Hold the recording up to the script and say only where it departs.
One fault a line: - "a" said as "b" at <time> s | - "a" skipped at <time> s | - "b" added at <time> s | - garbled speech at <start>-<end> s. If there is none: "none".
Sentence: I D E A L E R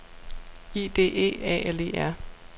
none